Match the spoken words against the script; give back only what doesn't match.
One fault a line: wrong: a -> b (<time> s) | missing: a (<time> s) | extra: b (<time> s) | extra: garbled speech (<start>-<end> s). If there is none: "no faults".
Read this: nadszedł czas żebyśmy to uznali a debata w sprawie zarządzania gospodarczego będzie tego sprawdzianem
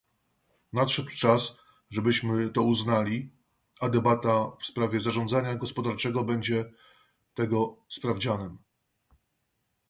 no faults